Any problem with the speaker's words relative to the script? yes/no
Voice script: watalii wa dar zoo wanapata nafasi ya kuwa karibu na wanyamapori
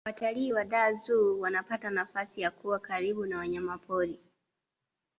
no